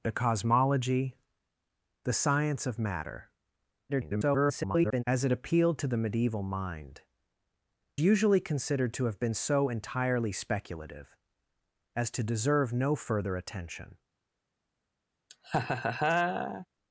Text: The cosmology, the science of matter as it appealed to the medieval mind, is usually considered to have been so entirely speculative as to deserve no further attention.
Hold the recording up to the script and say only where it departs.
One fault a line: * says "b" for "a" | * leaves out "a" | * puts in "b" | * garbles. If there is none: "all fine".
* garbles
* leaves out "is"